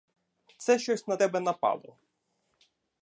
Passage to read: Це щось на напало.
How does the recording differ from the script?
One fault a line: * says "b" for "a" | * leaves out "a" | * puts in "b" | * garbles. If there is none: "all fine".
* puts in "тебе"